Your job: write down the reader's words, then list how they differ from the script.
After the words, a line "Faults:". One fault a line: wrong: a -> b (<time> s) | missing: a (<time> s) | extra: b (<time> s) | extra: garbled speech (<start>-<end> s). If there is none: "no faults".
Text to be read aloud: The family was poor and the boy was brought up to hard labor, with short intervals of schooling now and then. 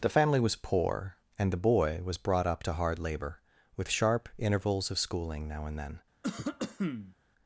The family was poor and the boy was brought up to hard labor, with sharp intervals of schooling now and then.
Faults:
wrong: short -> sharp (3.9 s)